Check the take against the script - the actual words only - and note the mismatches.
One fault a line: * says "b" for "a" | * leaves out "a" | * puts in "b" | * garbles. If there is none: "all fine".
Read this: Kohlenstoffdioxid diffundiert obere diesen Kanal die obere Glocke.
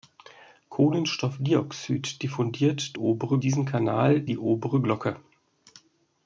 all fine